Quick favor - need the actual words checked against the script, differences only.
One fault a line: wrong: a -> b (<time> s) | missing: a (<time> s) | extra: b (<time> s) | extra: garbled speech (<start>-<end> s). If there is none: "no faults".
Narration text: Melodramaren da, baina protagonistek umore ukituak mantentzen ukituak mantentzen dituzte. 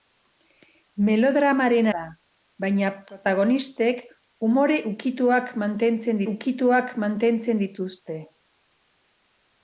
no faults